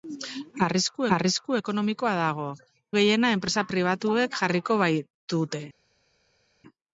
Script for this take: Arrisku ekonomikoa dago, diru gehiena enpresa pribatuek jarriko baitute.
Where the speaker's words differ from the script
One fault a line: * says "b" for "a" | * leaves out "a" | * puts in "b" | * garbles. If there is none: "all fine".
* puts in "arrisku"
* leaves out "diru"